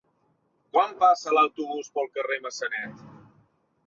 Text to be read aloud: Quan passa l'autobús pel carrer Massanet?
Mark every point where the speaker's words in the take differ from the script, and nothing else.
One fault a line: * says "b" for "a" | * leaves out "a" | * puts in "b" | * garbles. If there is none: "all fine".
all fine